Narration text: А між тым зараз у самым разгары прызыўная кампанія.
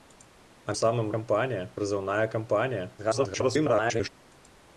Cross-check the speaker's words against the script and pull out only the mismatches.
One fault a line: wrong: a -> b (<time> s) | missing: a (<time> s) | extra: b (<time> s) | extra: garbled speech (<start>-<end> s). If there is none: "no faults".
missing: між тым зараз (0.8 s)
wrong: разгары -> кампанія (1.2 s)
extra: garbled speech (3.0-4.1 s)